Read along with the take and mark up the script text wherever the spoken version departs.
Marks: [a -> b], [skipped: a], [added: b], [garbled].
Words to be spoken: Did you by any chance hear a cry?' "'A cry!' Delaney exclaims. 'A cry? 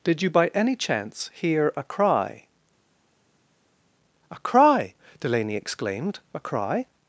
Did you by any chance hear a cry?' "'A cry!' Delaney [exclaims. -> exclaimed] 'A cry?